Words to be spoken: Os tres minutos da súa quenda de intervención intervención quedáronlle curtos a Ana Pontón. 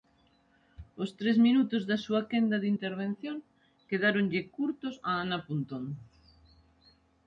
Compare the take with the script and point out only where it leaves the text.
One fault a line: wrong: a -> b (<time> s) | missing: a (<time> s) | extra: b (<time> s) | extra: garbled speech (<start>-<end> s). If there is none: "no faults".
missing: intervención (3.4 s)